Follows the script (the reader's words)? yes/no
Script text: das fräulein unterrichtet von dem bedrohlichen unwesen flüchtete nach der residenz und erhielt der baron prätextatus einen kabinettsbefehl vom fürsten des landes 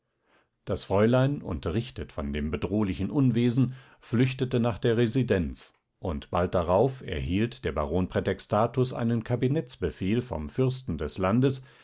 no